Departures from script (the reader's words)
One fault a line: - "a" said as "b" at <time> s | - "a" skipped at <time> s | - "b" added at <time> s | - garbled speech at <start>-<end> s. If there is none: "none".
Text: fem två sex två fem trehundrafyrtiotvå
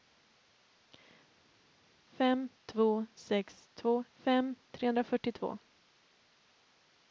none